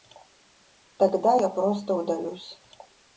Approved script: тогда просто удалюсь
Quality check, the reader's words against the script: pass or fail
fail